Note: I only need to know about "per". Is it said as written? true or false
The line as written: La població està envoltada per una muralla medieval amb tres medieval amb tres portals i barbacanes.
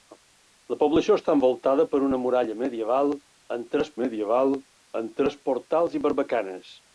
true